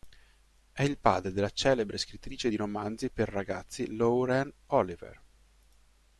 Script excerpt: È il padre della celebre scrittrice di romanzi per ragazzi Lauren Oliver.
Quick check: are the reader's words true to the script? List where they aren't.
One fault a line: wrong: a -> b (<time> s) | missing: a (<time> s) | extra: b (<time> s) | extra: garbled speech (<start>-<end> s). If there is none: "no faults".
no faults